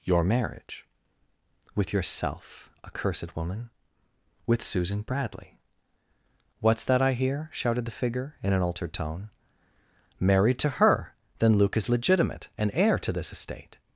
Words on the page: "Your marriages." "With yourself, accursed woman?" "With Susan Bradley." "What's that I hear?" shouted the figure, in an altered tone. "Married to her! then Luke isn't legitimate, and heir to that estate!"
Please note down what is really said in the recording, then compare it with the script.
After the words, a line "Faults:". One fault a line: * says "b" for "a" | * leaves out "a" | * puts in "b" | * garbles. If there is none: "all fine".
"Your marriage." "With yourself, accursed woman?" "With Susan Bradley." "What's that I hear?" shouted the figure, in an altered tone. "Married to her! then Luke is legitimate, and heir to this estate!"
Faults:
* says "marriage" for "marriages"
* says "is" for "isn't"
* says "this" for "that"